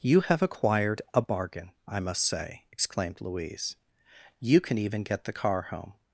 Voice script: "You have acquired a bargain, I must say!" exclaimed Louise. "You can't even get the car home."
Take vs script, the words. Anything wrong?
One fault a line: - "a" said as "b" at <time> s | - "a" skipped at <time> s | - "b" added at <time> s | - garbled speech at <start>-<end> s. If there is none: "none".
- "can't" said as "can" at 4.6 s